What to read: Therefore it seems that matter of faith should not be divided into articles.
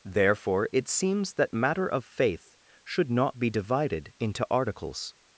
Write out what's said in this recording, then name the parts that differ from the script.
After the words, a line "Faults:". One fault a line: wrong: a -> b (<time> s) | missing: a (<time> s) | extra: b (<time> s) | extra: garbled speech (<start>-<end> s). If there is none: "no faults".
Therefore it seems that matter of faith should not be divided into articles.
Faults:
no faults